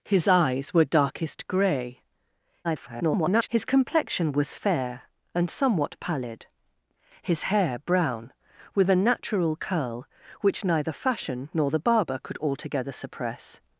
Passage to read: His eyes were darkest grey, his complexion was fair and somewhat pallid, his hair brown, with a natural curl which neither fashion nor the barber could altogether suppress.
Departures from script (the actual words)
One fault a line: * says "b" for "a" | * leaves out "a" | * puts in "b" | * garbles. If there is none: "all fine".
* garbles